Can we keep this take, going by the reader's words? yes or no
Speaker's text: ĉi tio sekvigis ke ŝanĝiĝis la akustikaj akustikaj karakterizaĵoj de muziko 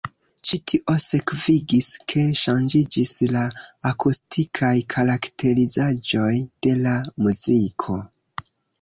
no